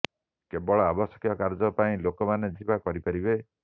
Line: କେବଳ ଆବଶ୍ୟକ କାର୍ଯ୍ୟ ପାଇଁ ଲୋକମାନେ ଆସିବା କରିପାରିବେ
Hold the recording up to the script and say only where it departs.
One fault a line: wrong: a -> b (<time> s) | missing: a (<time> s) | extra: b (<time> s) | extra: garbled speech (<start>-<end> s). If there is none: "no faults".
no faults